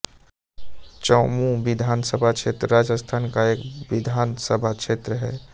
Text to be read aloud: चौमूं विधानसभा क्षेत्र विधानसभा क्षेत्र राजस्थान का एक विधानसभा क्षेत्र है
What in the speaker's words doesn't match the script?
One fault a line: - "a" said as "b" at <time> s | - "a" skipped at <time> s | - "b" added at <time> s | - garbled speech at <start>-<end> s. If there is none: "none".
- "विधानसभा क्षेत्र" skipped at 2.7 s